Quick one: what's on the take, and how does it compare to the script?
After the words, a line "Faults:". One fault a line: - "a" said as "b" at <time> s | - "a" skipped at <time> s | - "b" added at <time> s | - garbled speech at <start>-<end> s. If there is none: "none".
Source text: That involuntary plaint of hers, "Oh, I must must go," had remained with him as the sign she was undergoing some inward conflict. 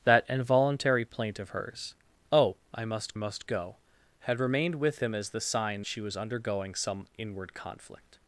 That involuntary plaint of hers, "Oh, I must must go," had remained with him as the sign she was undergoing some inward conflict.
Faults:
none